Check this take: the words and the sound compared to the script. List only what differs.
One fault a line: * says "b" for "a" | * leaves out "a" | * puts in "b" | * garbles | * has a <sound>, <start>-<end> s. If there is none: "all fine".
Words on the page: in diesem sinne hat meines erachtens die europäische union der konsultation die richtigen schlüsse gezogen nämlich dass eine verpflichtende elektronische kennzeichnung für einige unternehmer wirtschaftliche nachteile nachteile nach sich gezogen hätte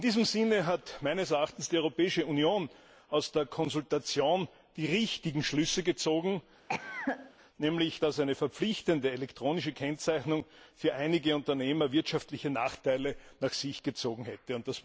* puts in "aus"
* has a cough, 6.7-7.3 s
* leaves out "nachteile"